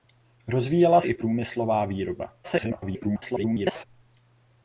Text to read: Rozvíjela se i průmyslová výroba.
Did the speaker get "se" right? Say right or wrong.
wrong